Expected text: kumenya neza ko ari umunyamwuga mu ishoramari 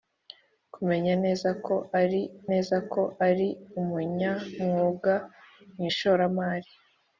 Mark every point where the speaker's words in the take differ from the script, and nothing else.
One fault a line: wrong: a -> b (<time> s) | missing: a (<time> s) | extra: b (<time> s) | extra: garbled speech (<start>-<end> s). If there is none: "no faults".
extra: neza ko ari (2.5 s)